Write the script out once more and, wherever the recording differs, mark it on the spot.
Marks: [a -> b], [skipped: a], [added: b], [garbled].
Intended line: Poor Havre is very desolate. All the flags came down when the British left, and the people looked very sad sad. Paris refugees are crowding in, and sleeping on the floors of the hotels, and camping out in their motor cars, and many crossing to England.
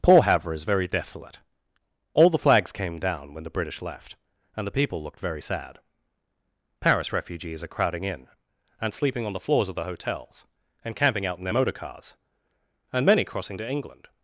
Poor Havre is very desolate. All the flags came down when the British left, and the people looked very sad [skipped: sad.] Paris refugees are crowding in, and sleeping on the floors of the hotels, and camping out in their motor cars, and many crossing to England.